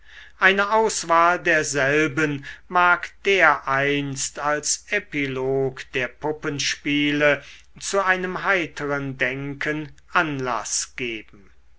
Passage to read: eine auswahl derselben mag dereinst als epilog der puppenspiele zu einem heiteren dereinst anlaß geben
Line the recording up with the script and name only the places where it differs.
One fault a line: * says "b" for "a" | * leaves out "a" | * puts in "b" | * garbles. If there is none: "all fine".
* says "denken" for "dereinst"